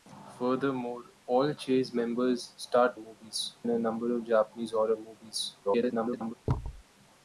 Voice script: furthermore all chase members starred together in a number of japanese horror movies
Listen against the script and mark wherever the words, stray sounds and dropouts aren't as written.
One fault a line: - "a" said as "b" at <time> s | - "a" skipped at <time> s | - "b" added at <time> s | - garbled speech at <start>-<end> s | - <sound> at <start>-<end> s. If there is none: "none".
- "together" said as "movies" at 3.0 s
- garbled speech at 5.6-6.3 s
- thud at 6.5-6.8 s